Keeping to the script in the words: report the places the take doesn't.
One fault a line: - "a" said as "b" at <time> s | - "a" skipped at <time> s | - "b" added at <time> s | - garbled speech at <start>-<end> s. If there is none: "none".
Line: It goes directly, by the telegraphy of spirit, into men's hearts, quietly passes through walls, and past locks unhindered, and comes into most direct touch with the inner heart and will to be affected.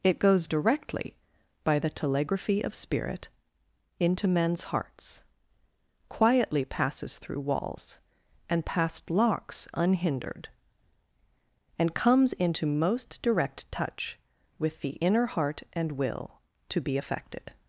none